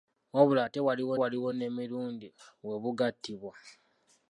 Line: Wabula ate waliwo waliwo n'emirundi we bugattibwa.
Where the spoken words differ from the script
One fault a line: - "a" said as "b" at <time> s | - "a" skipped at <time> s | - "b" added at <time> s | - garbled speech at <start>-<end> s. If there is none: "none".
none